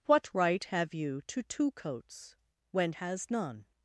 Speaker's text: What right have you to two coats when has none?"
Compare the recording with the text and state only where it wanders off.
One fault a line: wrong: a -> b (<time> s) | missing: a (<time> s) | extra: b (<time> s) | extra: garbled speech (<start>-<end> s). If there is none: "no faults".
no faults